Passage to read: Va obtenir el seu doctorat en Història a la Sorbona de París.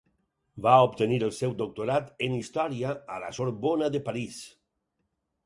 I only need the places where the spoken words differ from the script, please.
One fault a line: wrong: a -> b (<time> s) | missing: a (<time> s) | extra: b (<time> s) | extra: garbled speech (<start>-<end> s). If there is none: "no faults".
no faults